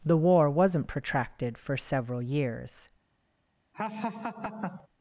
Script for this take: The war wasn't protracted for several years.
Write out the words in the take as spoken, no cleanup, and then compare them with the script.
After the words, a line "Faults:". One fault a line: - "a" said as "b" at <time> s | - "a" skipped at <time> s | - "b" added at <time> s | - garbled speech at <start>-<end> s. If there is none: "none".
The war wasn't protracted for several years.
Faults:
none